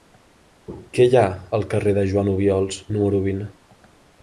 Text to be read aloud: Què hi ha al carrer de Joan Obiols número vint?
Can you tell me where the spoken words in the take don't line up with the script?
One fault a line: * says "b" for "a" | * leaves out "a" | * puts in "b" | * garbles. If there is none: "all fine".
all fine